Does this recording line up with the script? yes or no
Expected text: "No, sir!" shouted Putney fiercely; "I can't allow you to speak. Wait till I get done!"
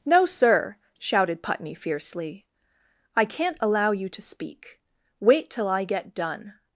yes